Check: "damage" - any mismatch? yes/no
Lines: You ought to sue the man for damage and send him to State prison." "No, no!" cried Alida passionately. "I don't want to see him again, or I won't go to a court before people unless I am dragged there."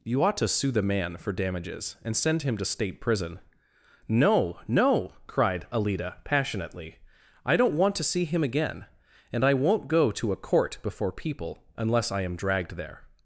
yes